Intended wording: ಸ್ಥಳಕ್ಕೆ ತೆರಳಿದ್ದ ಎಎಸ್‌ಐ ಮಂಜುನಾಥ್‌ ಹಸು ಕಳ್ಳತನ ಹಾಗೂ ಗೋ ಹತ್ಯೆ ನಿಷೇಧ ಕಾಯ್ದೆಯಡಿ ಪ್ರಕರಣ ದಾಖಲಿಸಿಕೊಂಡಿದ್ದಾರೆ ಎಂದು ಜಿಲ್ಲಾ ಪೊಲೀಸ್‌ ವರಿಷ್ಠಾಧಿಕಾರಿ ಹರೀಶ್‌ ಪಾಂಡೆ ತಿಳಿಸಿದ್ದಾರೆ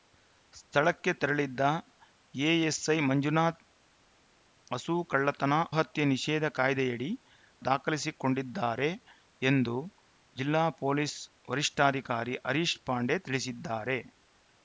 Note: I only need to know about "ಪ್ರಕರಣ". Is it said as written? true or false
false